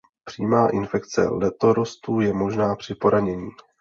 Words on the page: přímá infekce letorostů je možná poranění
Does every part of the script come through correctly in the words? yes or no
no